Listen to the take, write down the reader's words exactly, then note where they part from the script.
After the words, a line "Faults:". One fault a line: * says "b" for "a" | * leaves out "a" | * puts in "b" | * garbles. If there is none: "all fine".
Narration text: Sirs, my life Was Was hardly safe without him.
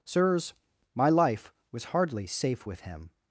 Sirs, my life Was hardly safe with him.
Faults:
* leaves out "Was"
* says "with" for "without"